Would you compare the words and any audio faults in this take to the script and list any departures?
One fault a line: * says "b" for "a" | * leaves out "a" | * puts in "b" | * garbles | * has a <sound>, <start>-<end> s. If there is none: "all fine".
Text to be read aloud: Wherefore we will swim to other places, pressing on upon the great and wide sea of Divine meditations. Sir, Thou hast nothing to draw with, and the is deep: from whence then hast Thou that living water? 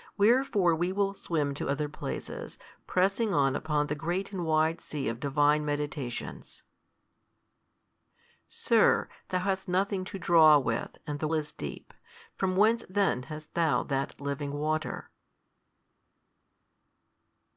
all fine